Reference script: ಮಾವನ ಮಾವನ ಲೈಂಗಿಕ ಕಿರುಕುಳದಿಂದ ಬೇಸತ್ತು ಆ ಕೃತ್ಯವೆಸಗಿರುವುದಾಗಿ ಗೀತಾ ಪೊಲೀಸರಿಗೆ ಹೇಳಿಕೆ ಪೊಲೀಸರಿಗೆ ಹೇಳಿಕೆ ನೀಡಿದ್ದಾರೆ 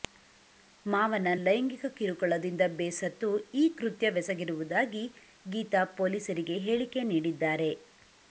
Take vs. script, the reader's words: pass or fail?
fail